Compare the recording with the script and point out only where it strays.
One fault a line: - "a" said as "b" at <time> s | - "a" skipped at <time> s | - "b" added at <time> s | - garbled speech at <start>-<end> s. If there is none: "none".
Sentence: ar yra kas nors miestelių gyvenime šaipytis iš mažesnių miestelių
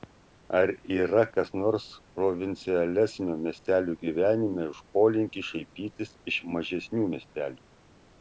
- "provincialesnio" added at 2.2 s
- "už polinkį" added at 4.7 s